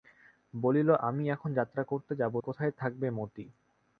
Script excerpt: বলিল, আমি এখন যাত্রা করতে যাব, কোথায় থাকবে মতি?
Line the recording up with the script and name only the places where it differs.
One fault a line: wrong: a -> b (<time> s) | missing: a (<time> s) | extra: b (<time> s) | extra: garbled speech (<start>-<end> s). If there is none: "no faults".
no faults